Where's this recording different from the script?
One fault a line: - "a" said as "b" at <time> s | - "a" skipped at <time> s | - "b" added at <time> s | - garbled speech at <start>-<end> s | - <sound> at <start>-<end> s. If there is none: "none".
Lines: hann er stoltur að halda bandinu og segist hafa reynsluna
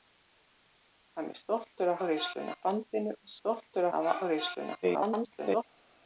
- "halda" said as "reynsluna" at 2.0 s
- "segist" said as "stoltur" at 3.4 s
- garbled speech at 4.8-5.6 s